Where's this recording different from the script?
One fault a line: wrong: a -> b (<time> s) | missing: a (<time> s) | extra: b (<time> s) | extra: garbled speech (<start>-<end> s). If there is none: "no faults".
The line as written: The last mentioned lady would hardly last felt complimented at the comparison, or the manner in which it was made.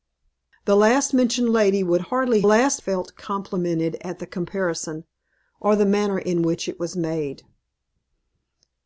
no faults